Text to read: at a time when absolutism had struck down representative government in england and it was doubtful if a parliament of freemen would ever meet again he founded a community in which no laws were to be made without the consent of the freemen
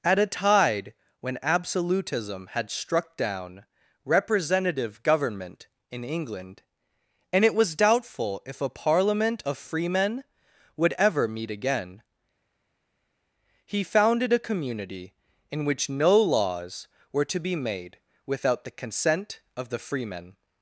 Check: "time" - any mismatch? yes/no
yes